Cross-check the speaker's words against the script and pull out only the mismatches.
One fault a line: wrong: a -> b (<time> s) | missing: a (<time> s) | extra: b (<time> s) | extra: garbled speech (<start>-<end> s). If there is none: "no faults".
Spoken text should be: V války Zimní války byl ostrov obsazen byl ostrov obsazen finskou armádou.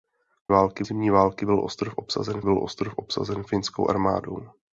no faults